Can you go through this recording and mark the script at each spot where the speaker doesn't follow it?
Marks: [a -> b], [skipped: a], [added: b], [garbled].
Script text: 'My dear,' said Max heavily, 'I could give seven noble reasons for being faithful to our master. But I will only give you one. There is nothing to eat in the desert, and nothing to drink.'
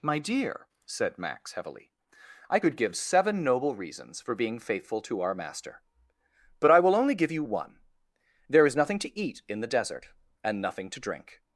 'My dear,' said Max heavily, 'I could give seven noble reasons for being faithful to our master. But I will only give you one. There is nothing to eat in the desert, and nothing to drink.'